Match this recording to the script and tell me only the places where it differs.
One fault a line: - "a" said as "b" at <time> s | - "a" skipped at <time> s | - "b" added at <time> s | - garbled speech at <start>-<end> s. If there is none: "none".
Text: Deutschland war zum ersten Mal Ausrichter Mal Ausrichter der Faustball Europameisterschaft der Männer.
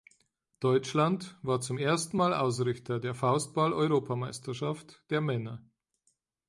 - "Mal Ausrichter" skipped at 3.0 s